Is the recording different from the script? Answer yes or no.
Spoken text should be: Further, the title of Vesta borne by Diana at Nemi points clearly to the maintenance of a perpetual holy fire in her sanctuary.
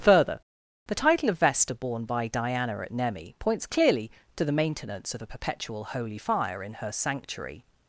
no